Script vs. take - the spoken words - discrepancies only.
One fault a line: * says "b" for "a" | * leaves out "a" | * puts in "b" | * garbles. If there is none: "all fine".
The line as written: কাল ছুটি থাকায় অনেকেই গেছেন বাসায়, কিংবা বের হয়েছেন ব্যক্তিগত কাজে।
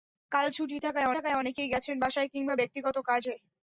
* puts in "থাকায়"
* leaves out "বের হয়েছেন"